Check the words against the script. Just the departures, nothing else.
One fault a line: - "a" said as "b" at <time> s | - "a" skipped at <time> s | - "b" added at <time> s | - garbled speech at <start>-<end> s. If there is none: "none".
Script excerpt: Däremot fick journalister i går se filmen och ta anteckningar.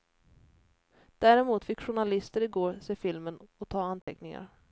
none